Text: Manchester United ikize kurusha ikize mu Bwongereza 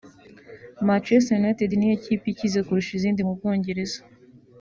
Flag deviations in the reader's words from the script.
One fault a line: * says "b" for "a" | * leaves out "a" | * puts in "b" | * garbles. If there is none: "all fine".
* puts in "niyo kipe"
* says "izindi" for "ikize"